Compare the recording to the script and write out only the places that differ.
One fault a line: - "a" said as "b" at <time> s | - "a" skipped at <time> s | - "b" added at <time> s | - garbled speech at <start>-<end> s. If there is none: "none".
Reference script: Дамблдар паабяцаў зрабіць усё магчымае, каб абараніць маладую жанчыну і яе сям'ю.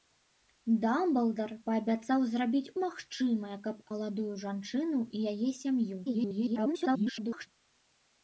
- "усё" skipped at 2.7 s
- "абараніць" skipped at 3.8 s
- garbled speech at 6.0-7.5 s